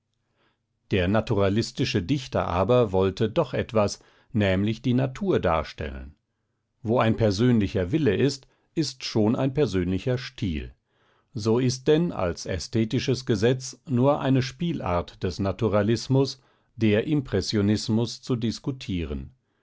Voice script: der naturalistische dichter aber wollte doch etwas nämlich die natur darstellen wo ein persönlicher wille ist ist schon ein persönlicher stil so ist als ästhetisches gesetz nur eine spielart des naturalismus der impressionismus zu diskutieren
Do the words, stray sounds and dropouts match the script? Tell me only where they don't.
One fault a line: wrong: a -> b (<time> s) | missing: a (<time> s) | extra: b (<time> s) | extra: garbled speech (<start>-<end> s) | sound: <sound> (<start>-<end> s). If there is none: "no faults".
extra: denn (11.9 s)